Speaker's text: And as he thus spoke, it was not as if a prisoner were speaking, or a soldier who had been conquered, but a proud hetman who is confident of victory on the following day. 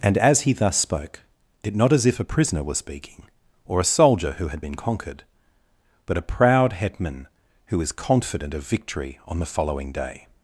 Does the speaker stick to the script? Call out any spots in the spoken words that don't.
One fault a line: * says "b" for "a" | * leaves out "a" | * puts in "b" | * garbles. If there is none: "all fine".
* leaves out "was"